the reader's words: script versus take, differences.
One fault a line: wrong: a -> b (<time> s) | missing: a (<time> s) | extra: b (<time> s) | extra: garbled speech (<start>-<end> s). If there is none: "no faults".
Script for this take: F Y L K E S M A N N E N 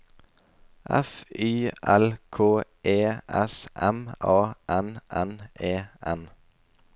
no faults